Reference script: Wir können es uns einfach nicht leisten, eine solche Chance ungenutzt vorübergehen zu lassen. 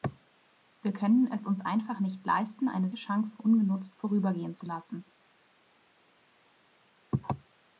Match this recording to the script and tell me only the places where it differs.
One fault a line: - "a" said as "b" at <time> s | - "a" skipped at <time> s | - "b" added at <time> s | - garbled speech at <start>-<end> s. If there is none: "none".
- "solche" skipped at 2.9 s